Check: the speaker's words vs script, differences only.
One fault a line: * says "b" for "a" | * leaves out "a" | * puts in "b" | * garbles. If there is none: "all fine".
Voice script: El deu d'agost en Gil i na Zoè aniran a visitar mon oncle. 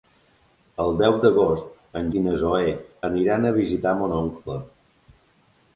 * leaves out "Gil"